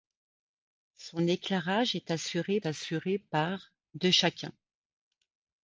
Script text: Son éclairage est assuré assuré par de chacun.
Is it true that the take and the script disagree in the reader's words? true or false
false